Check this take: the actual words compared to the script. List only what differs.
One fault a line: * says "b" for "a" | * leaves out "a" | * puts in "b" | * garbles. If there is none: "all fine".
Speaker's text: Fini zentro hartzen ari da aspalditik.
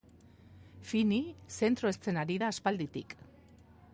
all fine